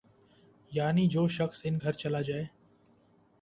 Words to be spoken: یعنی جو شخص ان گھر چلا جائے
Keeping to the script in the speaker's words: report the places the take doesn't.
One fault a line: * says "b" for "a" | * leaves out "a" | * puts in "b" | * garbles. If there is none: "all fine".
all fine